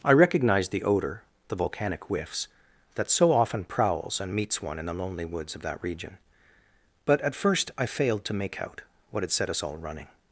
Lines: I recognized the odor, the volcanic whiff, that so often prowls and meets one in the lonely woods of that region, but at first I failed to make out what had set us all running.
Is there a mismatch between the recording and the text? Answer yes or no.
yes